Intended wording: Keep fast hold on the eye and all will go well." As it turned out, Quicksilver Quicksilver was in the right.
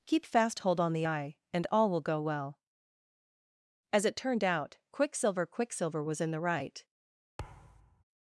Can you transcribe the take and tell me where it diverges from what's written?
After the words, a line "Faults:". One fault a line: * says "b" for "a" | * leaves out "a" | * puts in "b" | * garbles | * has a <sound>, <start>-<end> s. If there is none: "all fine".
Keep fast hold on the eye and all will go well." As it turned out, Quicksilver Quicksilver was in the right.
Faults:
* has a thud, 7.4-8.0 s